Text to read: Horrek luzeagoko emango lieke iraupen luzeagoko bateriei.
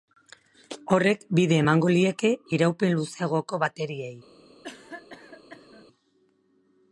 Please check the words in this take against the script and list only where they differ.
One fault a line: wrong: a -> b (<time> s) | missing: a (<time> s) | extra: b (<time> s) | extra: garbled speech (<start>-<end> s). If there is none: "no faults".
wrong: luzeagoko -> bide (1.4 s)